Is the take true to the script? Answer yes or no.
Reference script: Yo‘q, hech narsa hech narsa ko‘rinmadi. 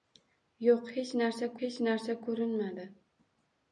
yes